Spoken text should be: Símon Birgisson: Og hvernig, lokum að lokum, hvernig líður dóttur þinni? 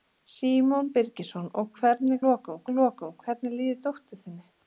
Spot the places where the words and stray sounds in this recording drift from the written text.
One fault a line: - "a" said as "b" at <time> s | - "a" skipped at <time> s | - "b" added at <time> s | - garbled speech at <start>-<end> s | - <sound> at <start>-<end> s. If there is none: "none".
none